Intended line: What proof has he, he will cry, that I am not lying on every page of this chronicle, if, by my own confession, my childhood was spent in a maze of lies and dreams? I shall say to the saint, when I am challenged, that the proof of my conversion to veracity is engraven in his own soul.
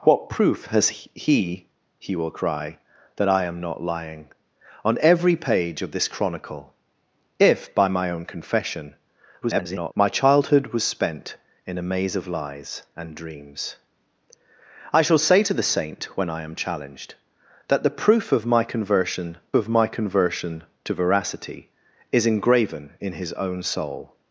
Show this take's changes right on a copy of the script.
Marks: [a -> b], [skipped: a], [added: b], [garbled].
What proof has he, he will cry, that I am not lying on every page of this chronicle, if, by my own confession, [garbled] my childhood was spent in a maze of lies and dreams? I shall say to the saint, when I am challenged, that the proof of my conversion [added: of my conversion] to veracity is engraven in his own soul.